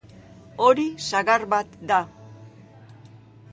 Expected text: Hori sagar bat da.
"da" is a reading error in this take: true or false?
false